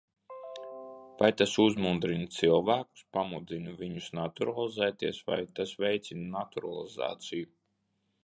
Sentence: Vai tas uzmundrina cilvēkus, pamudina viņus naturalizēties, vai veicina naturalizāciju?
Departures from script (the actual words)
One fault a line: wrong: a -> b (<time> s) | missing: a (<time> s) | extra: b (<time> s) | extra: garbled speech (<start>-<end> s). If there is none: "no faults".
extra: tas (5.6 s)